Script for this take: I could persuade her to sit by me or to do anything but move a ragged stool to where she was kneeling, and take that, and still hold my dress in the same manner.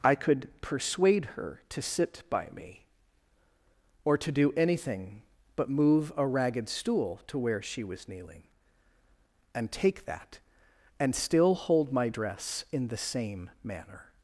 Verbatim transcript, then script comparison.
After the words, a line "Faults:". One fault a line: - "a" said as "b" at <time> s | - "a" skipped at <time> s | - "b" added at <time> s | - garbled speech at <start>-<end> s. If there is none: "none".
I could persuade her to sit by me or to do anything but move a ragged stool to where she was kneeling, and take that, and still hold my dress in the same manner.
Faults:
none